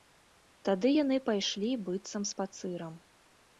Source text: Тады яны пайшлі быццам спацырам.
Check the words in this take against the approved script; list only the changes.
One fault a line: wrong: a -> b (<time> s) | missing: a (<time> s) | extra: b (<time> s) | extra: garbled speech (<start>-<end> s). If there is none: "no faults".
no faults